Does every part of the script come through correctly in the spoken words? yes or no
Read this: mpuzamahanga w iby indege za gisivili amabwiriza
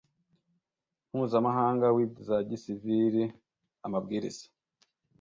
no